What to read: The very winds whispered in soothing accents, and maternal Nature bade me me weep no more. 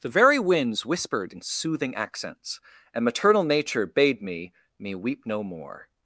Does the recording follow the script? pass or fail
pass